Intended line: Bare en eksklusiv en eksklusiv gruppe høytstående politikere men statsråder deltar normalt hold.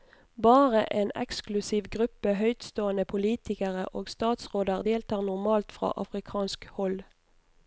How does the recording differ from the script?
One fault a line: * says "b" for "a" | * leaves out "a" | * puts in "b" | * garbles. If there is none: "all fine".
* leaves out "en eksklusiv"
* says "og" for "men"
* puts in "fra afrikansk"